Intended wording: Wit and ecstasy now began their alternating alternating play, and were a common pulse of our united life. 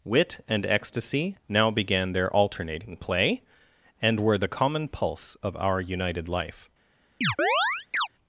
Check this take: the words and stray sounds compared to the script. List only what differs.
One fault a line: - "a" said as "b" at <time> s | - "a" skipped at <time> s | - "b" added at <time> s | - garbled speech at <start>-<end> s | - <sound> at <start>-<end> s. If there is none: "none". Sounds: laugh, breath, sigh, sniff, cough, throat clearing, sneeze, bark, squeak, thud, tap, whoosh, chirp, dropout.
- "alternating" skipped at 3.0 s
- "a" said as "the" at 4.4 s
- chirp at 7.2-8.1 s